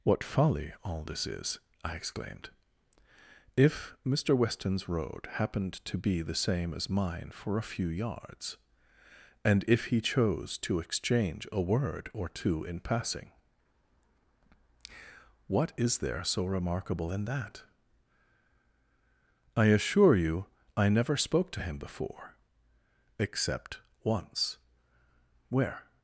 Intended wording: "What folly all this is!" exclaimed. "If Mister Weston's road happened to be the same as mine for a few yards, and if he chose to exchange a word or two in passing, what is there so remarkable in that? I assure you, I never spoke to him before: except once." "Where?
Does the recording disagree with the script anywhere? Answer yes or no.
yes